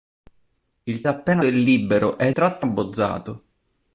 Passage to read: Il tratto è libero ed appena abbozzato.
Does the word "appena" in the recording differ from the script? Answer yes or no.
yes